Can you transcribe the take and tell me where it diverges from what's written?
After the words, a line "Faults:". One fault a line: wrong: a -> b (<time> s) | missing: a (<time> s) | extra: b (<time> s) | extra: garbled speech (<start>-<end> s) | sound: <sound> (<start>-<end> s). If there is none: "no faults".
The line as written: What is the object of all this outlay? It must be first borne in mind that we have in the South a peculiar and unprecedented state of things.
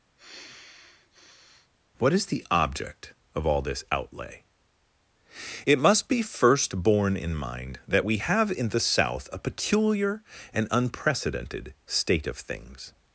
What is the object of all this outlay? It must be first borne in mind that we have in the South a peculiar and unprecedented state of things.
Faults:
sound: sigh (0.2-1.7 s)